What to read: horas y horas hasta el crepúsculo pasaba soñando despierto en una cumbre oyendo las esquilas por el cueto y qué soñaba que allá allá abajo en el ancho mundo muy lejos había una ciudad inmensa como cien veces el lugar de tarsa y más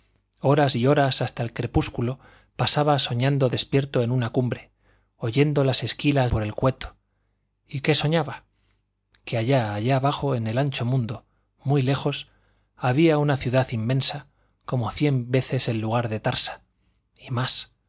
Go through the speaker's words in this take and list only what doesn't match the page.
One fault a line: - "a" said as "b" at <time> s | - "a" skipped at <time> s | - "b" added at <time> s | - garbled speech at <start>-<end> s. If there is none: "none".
none